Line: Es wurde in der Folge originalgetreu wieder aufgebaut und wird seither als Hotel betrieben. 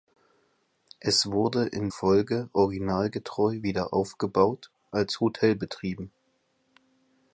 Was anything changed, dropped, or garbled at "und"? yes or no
yes